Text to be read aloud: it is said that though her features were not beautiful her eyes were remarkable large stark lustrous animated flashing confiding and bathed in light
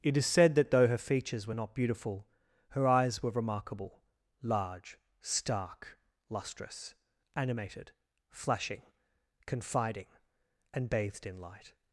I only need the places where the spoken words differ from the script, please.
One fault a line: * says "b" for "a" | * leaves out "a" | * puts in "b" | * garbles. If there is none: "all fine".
all fine